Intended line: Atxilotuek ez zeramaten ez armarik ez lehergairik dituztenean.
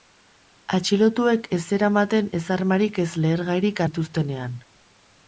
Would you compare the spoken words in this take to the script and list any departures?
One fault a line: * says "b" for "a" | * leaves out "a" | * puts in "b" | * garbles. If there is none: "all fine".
all fine